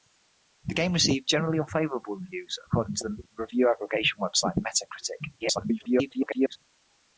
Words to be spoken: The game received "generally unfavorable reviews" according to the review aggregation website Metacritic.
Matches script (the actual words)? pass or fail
fail